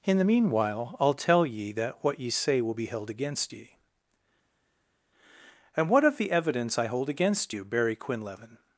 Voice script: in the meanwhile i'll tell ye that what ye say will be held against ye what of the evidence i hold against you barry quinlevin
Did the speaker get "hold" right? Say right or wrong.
right